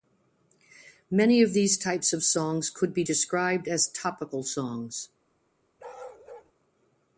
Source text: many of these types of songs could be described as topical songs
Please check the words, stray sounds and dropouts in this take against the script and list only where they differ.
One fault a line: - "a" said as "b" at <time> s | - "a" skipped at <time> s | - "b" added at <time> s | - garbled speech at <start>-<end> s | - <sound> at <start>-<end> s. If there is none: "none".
- bark at 5.8-6.5 s